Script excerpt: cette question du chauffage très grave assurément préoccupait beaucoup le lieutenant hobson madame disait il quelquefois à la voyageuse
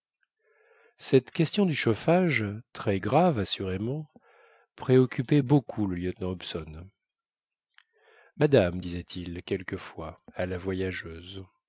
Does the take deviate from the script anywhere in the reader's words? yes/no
no